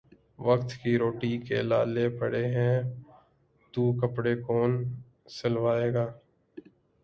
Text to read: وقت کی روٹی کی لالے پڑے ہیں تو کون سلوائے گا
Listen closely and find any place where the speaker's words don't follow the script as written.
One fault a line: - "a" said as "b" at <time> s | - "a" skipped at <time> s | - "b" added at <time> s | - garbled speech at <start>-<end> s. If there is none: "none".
- "کی" said as "کے" at 1.5 s
- "کپڑے" added at 4.0 s